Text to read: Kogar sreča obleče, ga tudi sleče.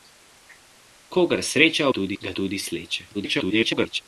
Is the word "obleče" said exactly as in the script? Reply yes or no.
no